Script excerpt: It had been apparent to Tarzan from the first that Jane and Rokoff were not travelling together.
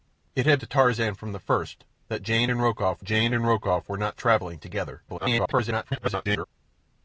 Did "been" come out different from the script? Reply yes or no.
yes